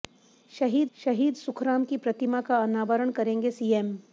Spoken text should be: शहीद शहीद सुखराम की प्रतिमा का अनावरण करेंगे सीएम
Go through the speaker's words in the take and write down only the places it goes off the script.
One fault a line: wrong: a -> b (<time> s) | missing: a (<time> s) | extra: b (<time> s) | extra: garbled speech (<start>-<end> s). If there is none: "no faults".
no faults